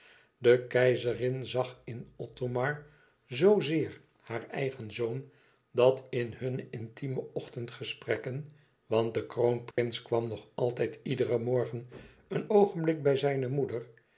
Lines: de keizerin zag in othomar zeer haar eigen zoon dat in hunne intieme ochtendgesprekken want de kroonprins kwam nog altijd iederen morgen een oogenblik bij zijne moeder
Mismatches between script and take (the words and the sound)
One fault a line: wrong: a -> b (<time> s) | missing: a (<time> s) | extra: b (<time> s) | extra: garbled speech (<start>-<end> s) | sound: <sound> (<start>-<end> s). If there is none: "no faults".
extra: zoo (3.2 s)
sound: dropout (9.7-9.8 s)